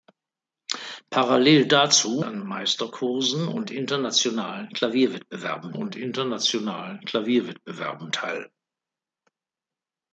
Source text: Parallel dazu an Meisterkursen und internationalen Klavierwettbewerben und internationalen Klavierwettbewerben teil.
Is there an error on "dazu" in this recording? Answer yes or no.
no